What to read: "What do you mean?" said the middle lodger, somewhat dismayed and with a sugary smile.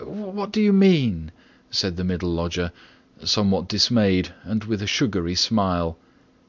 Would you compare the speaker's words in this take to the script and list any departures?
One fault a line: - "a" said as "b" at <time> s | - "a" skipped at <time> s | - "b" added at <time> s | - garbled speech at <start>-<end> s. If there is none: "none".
none